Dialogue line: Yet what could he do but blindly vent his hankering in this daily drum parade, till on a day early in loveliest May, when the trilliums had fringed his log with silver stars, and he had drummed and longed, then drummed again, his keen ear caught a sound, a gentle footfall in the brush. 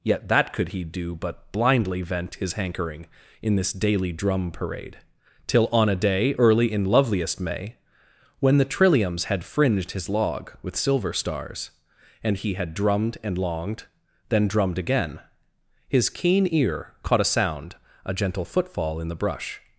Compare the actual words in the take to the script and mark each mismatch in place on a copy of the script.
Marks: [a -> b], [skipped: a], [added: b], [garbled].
Yet [what -> that] could he do but blindly vent his hankering in this daily drum parade, till on a day early in loveliest May, when the trilliums had fringed his log with silver stars, and he had drummed and longed, then drummed again, his keen ear caught a sound, a gentle footfall in the brush.